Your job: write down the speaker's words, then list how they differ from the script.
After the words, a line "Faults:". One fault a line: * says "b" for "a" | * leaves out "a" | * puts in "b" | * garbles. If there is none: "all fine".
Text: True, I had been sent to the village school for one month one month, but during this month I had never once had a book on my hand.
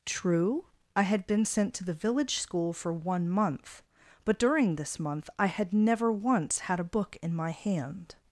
True, I had been sent to the village school for one month, but during this month I had never once had a book in my hand.
Faults:
* leaves out "one month"
* says "in" for "on"